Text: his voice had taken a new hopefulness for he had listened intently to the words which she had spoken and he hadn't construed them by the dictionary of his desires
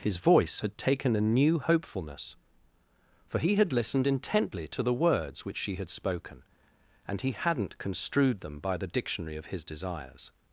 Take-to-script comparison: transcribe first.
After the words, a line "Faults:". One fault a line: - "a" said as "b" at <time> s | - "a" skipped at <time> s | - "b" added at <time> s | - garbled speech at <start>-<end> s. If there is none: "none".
his voice had taken a new hopefulness for he had listened intently to the words which she had spoken and he hadn't construed them by the dictionary of his desires
Faults:
none